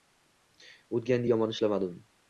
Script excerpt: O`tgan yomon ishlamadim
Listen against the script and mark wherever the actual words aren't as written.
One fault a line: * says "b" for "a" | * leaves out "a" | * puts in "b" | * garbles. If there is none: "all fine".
all fine